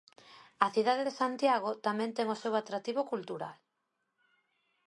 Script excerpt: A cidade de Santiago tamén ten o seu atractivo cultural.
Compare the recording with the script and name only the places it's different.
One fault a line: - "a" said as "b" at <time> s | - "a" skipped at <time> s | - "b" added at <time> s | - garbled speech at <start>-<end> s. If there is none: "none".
none